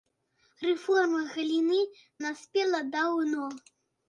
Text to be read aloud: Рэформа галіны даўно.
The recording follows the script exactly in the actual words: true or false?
false